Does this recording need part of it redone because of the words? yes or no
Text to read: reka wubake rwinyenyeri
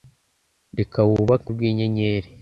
no